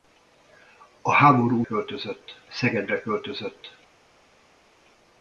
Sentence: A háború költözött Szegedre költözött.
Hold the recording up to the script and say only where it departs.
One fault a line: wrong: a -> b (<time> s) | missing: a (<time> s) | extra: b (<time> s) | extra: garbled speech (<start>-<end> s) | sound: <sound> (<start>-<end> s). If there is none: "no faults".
no faults